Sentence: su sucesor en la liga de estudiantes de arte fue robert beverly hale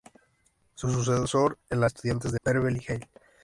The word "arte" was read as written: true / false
false